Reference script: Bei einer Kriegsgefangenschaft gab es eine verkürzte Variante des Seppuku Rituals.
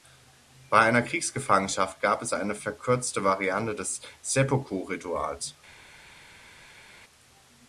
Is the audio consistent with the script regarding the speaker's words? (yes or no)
yes